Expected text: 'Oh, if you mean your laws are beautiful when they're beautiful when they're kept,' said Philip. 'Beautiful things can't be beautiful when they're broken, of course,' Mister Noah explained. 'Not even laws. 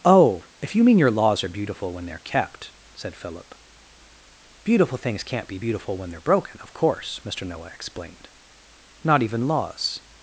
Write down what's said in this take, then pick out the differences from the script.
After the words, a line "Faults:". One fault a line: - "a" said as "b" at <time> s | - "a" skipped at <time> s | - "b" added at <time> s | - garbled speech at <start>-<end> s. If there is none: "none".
'Oh, if you mean your laws are beautiful when they're kept,' said Philip. 'Beautiful things can't be beautiful when they're broken, of course,' Mister Noah explained. 'Not even laws.
Faults:
- "beautiful when they're" skipped at 2.2 s